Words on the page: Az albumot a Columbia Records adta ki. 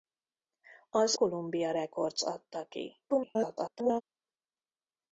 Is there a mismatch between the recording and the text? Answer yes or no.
yes